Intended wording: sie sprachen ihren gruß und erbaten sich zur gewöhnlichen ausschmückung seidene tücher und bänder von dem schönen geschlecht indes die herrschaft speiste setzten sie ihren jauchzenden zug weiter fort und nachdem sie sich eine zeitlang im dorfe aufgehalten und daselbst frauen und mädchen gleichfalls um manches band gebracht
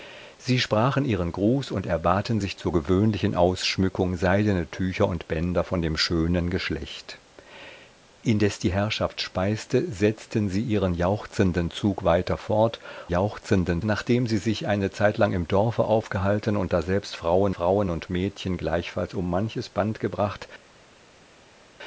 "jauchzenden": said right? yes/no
yes